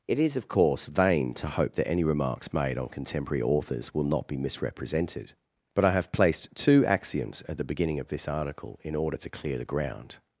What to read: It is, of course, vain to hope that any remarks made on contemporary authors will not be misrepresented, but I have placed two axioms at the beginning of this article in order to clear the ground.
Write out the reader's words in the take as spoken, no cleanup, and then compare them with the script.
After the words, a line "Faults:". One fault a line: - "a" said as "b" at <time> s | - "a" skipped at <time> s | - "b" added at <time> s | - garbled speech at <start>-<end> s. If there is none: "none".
It is, of course, vain to hope that any remarks made on contemporary authors will not be misrepresented, but I have placed two axioms at the beginning of this article in order to clear the ground.
Faults:
none